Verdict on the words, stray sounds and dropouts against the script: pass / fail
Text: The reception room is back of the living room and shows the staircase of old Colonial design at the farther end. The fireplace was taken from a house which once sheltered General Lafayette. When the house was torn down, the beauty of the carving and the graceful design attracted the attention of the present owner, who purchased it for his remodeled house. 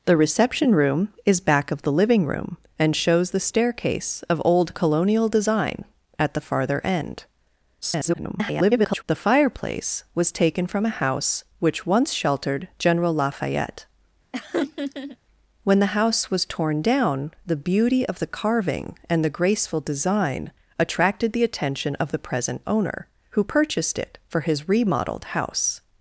fail